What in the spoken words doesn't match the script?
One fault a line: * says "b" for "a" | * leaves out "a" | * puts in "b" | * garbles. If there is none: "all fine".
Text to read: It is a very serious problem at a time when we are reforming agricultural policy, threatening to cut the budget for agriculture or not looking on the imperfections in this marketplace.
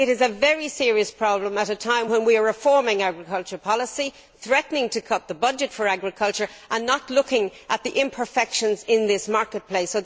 * says "and" for "or"
* says "at" for "on"